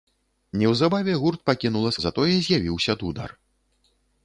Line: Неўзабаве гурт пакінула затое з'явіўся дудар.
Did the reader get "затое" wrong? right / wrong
right